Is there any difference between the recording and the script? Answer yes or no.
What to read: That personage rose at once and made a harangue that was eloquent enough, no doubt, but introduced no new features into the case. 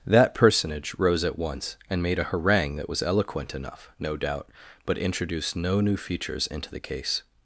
no